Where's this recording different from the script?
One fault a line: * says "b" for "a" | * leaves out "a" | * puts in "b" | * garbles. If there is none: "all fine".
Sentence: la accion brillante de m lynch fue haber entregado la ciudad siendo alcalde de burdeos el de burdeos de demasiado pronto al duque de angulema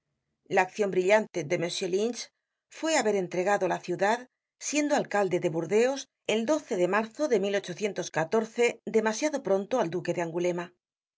* says "marzo" for "burdeos"